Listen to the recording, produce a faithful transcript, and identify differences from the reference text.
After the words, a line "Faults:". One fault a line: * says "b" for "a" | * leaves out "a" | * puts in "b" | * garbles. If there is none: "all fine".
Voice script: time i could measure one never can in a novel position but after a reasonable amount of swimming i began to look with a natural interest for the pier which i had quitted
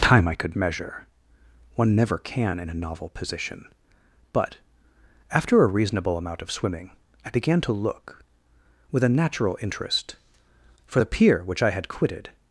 time i could measure one never can in a novel position but after a reasonable amount of swimming i began to look with a natural interest for the pier which i had quitted
Faults:
all fine